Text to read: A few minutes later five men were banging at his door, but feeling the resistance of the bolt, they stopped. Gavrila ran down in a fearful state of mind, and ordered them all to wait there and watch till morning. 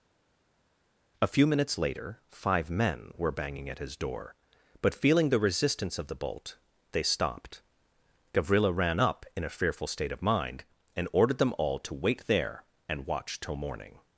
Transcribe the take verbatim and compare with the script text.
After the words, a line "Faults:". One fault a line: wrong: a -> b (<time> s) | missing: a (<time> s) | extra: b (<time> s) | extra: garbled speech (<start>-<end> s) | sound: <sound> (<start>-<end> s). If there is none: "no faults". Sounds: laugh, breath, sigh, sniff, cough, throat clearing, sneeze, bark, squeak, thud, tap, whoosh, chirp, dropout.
A few minutes later five men were banging at his door, but feeling the resistance of the bolt, they stopped. Gavrila ran up in a fearful state of mind, and ordered them all to wait there and watch till morning.
Faults:
wrong: down -> up (9.0 s)